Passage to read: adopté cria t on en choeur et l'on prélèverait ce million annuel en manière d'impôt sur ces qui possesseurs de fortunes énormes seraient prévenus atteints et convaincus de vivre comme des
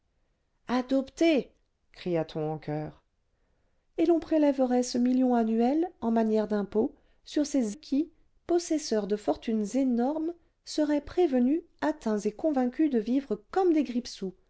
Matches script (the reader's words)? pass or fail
pass